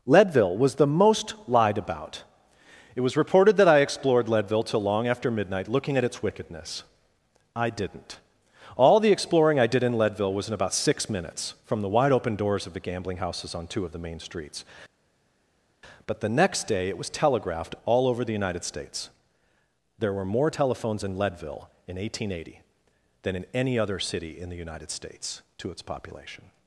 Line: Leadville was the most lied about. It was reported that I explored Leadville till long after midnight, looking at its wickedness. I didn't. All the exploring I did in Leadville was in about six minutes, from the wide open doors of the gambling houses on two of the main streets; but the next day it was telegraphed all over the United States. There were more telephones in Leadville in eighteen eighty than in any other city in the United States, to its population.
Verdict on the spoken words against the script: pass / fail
pass